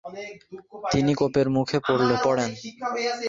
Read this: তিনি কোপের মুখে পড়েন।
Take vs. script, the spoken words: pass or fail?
pass